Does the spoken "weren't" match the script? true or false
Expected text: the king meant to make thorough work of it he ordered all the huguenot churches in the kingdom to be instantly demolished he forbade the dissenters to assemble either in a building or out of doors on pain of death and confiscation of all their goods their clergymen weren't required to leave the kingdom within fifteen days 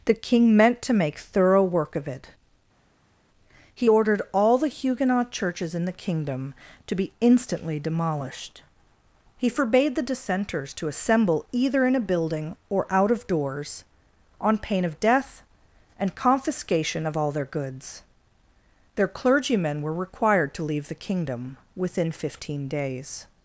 false